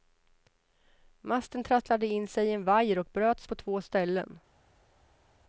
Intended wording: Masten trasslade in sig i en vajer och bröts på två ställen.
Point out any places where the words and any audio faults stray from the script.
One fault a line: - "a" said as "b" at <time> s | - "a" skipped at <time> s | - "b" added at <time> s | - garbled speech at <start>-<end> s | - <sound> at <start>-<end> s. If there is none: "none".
none